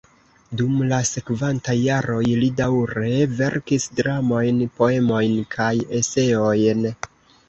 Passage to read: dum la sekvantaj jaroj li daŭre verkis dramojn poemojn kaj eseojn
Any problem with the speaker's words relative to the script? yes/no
no